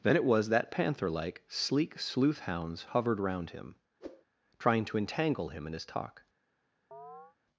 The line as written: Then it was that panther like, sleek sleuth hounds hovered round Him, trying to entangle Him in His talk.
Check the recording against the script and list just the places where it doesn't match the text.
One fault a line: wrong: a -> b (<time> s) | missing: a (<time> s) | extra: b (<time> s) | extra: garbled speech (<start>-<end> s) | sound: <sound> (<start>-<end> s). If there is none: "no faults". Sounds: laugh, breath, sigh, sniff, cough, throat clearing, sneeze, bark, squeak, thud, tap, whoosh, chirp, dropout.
sound: whoosh (4.0-4.2 s)
sound: chirp (6.9-7.4 s)